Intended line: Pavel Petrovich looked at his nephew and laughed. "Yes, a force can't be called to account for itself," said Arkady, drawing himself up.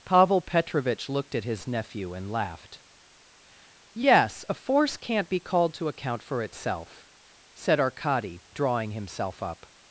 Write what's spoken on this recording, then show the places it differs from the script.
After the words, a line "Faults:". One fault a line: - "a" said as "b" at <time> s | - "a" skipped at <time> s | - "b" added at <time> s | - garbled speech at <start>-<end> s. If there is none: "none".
Pavel Petrovich looked at his nephew and laughed. "Yes, a force can't be called to account for itself," said Arkady, drawing himself up.
Faults:
none